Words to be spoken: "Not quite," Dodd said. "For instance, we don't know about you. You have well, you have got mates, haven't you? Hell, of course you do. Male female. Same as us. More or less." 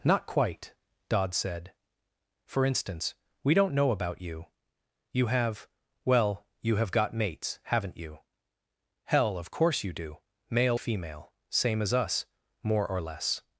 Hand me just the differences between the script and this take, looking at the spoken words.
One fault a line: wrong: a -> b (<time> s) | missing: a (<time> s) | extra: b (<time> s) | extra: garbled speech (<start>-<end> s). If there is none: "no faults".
no faults